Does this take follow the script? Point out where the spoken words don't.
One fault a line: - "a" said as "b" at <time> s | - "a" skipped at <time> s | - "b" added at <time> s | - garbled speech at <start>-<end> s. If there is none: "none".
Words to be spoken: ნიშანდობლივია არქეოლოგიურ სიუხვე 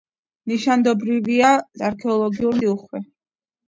none